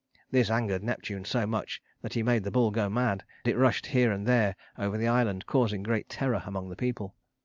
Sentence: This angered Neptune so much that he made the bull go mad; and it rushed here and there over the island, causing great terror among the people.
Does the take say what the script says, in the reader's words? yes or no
no